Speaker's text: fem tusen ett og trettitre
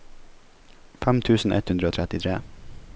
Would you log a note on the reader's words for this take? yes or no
yes